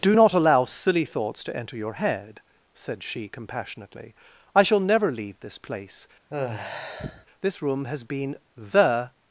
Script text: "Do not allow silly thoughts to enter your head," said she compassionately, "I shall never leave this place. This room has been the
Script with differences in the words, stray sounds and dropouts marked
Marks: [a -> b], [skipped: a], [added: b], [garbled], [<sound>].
"Do not allow silly thoughts to enter your head," said she compassionately, "I shall never leave this place. [sigh] This room has been the